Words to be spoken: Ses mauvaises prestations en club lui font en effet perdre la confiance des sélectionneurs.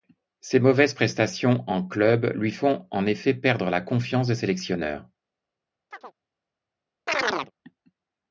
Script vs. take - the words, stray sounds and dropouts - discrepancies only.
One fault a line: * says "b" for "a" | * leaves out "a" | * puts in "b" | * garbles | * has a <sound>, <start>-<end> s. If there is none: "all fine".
* has a chirp, 5.9-6.1 s
* has a chirp, 7.1-7.5 s